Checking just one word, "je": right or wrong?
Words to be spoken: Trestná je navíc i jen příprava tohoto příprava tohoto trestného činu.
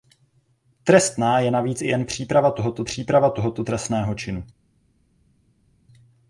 right